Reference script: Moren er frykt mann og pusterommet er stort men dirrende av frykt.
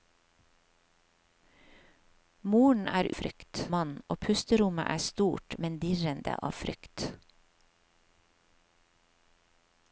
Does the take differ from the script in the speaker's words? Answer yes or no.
no